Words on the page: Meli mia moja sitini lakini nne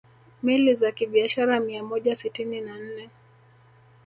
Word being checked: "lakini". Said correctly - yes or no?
no